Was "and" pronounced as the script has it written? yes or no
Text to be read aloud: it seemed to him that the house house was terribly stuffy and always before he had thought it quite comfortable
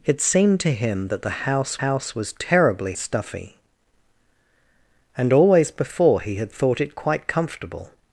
yes